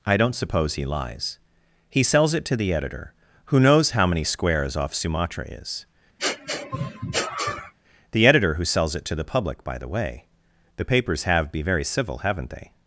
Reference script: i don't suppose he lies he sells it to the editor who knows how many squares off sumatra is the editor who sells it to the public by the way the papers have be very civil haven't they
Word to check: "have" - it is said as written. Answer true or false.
true